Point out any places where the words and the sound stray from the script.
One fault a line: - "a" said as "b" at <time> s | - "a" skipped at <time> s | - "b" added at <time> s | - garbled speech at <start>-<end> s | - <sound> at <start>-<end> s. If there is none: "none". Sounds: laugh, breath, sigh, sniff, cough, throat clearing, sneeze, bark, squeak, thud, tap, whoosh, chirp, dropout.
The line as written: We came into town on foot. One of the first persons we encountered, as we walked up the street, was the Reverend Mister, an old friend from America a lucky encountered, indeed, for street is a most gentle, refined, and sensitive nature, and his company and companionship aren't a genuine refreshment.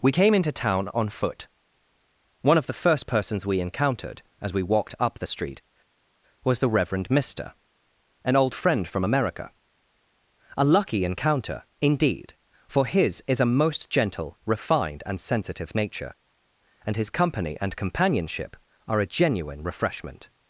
- "encountered" said as "encounter" at 11.0 s
- "street" said as "his" at 12.8 s
- "aren't" said as "are" at 18.9 s